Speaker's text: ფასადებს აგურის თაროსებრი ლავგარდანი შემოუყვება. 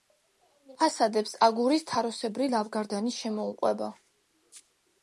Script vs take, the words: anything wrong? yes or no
no